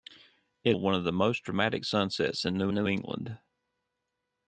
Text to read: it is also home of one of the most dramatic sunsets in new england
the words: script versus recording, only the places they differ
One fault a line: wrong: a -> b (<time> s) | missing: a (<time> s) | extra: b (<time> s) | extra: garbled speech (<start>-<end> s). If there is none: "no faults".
missing: is also home (0.8 s)
extra: new (2.7 s)